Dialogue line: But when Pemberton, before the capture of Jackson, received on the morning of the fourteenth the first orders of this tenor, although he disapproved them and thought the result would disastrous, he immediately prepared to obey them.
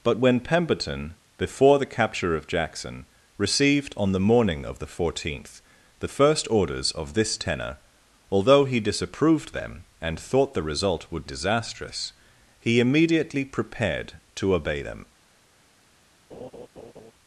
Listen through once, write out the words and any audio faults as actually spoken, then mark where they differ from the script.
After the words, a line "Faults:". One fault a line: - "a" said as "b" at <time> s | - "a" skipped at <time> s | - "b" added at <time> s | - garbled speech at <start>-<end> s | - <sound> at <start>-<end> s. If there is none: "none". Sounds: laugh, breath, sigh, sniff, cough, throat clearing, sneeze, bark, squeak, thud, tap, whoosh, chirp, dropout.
But when Pemberton, before the capture of Jackson, received on the morning of the fourteenth the first orders of this tenor, although he disapproved them and thought the result would disastrous, he immediately prepared to obey them.
Faults:
- laugh at 16.3-17.1 s